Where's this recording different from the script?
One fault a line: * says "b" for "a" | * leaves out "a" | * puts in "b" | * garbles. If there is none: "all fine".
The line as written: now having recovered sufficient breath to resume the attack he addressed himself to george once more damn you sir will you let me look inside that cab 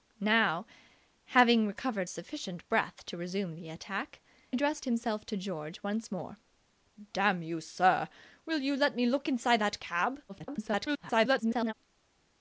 * leaves out "he"
* garbles